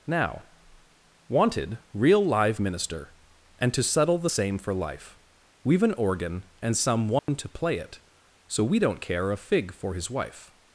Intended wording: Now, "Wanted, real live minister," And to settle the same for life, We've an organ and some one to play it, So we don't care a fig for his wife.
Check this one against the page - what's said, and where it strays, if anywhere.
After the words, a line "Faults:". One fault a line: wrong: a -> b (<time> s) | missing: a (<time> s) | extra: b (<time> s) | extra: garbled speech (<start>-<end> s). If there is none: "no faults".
Now, "Wanted, real live minister," And to settle the same for life, We've an organ and some one to play it, So we don't care a fig for his wife.
Faults:
no faults